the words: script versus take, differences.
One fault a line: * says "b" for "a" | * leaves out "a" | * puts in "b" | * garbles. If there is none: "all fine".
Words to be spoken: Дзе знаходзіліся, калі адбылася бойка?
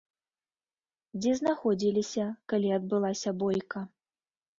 all fine